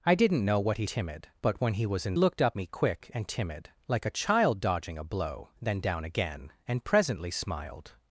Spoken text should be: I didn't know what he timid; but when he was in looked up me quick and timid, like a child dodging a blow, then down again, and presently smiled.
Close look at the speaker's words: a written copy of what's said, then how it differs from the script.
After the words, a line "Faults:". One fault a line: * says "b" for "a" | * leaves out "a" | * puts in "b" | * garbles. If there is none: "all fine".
I didn't know what he timid; but when he was in looked up me quick and timid, like a child dodging a blow, then down again, and presently smiled.
Faults:
all fine